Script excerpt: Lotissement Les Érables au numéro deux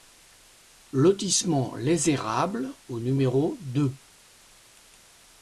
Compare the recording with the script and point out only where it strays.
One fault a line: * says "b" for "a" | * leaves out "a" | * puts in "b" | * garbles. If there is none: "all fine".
all fine